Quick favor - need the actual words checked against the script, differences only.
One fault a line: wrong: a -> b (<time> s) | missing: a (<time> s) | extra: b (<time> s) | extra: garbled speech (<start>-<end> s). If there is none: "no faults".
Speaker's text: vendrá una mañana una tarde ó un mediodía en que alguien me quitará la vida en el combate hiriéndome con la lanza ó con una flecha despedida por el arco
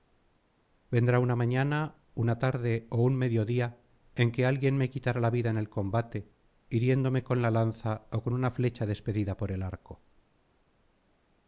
no faults